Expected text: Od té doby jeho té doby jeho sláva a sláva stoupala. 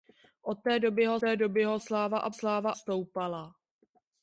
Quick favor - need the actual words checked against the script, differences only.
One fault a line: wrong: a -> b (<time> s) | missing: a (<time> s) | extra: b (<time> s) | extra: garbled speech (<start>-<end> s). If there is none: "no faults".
no faults